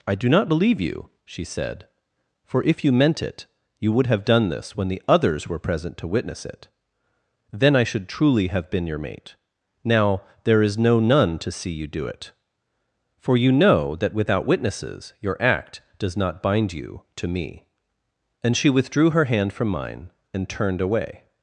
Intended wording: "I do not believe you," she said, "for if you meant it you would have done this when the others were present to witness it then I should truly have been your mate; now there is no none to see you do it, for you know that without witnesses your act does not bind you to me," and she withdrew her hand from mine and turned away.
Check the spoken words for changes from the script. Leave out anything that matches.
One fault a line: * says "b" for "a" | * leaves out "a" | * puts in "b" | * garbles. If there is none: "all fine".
all fine